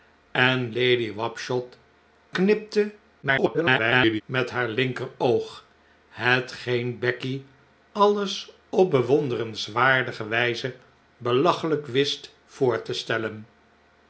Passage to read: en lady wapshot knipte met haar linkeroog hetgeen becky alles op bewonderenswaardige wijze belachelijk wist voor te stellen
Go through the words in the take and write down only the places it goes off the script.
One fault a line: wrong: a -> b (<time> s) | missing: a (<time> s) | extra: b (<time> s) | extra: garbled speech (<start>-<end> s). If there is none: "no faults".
extra: garbled speech (3.2-4.2 s)